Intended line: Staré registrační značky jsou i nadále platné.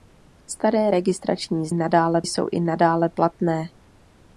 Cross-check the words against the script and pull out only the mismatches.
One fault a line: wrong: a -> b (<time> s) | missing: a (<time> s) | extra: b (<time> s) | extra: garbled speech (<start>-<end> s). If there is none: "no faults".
wrong: značky -> nadále (1.7 s)